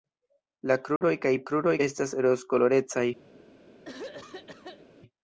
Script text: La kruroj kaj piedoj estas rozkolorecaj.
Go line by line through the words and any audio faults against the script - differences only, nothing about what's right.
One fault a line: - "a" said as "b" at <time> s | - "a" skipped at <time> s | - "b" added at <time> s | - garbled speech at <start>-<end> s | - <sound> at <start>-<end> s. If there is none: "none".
- dropout at 1.0-1.0 s
- "piedoj" said as "kruroj" at 1.5 s
- throat clearing at 3.8-4.9 s